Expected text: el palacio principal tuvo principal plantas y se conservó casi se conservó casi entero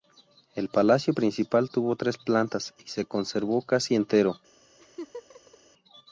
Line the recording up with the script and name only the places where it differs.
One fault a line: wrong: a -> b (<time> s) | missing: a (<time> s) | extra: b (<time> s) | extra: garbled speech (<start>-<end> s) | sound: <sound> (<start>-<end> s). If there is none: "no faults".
wrong: principal -> tres (1.9 s)
missing: se conservó casi (4.0 s)
sound: laugh (4.8-5.6 s)